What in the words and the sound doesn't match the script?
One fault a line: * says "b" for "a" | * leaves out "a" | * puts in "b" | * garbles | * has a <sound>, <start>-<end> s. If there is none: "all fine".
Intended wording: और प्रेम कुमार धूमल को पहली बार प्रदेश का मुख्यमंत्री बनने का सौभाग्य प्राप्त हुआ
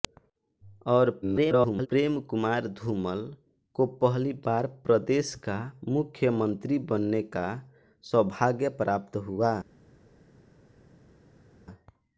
* garbles